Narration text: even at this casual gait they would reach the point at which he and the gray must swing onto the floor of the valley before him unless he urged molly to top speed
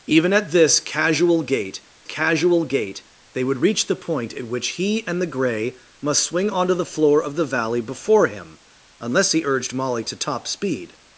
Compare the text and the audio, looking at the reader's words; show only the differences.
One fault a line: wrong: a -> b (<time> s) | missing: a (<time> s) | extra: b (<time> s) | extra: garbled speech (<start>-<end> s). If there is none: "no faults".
extra: casual gait (2.0 s)